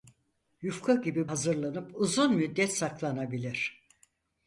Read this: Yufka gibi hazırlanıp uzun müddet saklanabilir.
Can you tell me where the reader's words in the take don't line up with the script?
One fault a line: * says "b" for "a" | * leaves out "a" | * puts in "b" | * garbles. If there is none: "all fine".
all fine